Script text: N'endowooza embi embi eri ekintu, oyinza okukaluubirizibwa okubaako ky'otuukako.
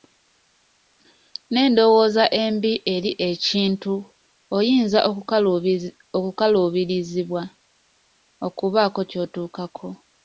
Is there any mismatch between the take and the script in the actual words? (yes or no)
yes